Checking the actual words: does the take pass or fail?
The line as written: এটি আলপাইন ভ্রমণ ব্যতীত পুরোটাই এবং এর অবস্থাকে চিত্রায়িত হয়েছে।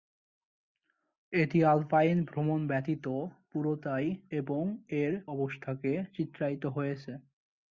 pass